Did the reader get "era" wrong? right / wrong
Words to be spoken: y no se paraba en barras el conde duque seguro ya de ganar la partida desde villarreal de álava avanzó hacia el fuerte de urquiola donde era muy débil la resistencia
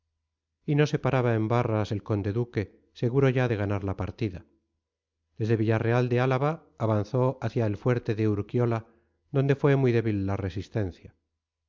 wrong